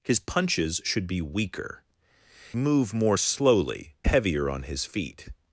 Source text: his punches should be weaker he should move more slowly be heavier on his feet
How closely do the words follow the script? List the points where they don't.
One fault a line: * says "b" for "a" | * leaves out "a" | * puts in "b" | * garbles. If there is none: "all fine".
* leaves out "he should"
* leaves out "be"